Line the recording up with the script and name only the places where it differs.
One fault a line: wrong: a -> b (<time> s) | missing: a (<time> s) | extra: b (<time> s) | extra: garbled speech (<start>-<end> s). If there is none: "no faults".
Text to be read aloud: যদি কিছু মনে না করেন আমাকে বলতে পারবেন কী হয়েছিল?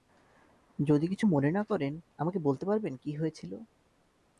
no faults